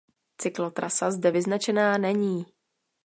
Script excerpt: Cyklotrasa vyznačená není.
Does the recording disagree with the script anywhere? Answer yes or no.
yes